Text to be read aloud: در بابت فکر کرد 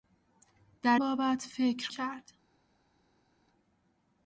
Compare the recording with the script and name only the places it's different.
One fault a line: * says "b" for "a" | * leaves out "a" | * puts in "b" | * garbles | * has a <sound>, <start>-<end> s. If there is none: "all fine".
all fine